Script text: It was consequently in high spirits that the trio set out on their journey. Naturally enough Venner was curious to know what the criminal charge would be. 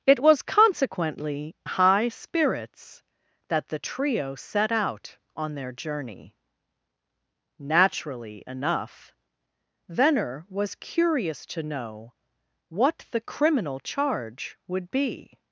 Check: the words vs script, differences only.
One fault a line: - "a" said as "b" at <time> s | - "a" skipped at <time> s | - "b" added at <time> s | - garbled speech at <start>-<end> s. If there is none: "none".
- "in" skipped at 1.6 s